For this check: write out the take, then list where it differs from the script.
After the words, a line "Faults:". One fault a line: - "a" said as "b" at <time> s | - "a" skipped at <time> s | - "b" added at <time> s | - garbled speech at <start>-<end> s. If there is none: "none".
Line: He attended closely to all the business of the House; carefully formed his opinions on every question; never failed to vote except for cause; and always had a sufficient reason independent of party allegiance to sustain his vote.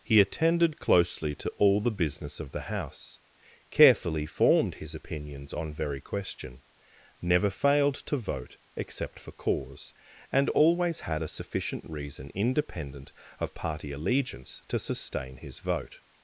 He attended closely to all the business of the House; carefully formed his opinions on very question; never failed to vote except for cause; and always had a sufficient reason independent of party allegiance to sustain his vote.
Faults:
- "every" said as "very" at 5.7 s